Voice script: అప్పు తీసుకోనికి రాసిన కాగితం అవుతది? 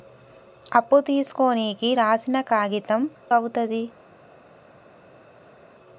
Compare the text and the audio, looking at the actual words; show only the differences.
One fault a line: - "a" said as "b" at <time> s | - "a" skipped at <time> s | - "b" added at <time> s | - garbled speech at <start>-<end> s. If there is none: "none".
none